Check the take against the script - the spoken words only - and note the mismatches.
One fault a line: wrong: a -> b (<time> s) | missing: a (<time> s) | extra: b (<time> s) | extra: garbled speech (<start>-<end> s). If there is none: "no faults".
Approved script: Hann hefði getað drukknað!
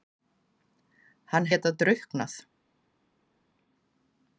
missing: hefði (1.5 s)